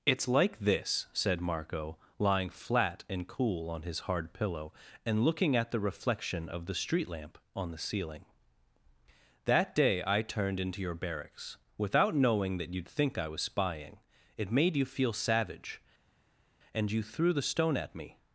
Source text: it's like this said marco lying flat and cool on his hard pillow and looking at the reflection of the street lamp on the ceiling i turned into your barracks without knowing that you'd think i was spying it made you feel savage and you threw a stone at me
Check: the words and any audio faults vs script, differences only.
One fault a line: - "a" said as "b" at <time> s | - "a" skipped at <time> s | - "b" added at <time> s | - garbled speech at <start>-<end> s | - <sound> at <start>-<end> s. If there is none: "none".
- "that day" added at 9.4 s
- "a" said as "the" at 17.3 s